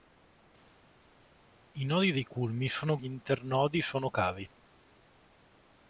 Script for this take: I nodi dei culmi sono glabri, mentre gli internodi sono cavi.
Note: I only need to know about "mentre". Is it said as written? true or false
false